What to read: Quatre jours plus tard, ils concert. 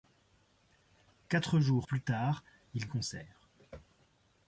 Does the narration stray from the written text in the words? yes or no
no